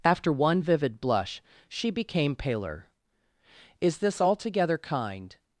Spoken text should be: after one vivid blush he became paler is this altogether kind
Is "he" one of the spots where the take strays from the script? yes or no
yes